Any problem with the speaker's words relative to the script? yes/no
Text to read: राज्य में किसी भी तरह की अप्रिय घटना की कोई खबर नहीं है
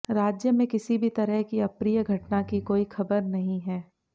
no